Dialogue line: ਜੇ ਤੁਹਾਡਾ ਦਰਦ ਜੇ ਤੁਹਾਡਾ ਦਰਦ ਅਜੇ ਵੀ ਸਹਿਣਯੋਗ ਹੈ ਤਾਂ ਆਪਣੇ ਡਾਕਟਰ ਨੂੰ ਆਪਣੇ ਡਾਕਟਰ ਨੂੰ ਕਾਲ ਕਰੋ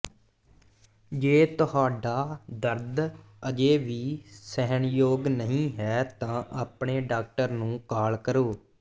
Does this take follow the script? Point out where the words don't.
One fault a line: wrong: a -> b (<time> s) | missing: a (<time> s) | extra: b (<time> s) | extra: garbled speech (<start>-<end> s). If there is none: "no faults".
missing: ਜੇ ਤੁਹਾਡਾ ਦਰਦ (3.0 s)
extra: ਨਹੀਂ (5.3 s)
missing: ਆਪਣੇ ਡਾਕਟਰ ਨੂੰ (7.8 s)